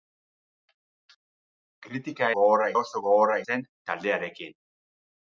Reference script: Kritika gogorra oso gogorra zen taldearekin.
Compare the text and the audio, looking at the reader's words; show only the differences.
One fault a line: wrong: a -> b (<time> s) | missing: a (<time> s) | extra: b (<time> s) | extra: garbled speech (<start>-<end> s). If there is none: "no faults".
no faults